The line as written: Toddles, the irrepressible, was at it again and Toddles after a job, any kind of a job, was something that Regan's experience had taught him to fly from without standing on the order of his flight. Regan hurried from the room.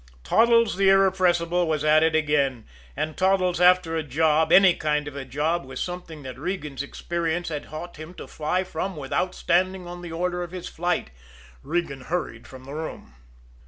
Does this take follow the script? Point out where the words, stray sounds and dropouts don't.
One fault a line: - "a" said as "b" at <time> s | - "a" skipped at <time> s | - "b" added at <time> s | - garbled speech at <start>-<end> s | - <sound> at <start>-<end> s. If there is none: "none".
none